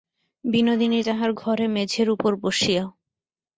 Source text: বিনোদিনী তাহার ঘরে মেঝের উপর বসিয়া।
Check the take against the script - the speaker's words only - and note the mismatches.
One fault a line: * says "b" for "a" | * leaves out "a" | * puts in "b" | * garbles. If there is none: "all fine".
all fine